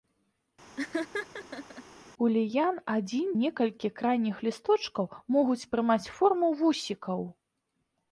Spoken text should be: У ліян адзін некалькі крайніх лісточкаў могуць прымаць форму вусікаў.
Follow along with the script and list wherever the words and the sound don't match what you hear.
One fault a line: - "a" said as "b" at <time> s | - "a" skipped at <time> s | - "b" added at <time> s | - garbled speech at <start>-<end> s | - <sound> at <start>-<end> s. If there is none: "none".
- laugh at 0.8-1.8 s